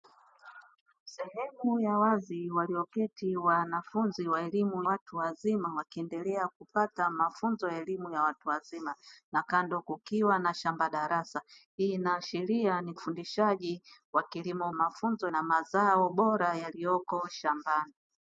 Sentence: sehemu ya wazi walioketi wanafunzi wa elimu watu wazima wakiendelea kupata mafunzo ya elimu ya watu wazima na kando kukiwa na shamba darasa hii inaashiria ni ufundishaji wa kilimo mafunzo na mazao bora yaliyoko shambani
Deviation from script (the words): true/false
false